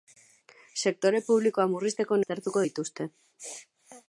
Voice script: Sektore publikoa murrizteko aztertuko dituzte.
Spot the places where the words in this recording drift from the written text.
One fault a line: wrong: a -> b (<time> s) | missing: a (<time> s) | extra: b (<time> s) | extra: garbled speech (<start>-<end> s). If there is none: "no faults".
no faults